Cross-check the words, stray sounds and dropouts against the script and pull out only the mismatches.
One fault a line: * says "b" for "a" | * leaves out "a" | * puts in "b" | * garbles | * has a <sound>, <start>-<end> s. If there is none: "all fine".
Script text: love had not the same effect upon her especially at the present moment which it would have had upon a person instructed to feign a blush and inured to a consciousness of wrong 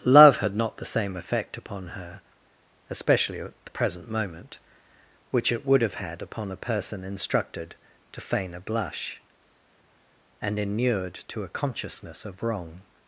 all fine